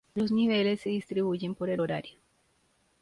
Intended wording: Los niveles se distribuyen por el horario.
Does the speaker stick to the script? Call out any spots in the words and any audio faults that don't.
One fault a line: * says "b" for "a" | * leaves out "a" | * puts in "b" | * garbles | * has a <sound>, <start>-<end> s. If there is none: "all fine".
all fine